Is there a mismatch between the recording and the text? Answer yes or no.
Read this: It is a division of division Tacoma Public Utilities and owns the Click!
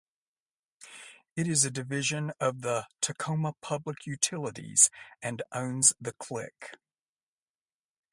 yes